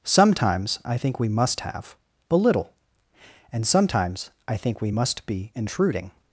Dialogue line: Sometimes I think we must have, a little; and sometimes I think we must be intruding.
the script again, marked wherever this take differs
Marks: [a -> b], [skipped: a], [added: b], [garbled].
Sometimes I think we must have, [a -> but] little; and sometimes I think we must be intruding.